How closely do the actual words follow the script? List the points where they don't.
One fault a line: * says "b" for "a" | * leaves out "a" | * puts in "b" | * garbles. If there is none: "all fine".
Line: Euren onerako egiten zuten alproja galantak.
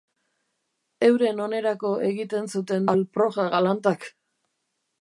all fine